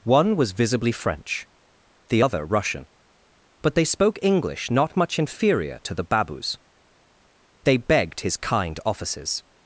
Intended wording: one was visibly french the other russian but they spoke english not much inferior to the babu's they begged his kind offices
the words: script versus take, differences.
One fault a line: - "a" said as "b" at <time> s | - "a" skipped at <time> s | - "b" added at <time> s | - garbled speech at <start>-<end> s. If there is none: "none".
none